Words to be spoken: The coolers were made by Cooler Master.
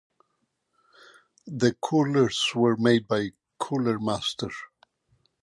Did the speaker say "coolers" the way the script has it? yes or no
yes